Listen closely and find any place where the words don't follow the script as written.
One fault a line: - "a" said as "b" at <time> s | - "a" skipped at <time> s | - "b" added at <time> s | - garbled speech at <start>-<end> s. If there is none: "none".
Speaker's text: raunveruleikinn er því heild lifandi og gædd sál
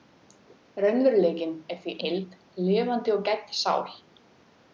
none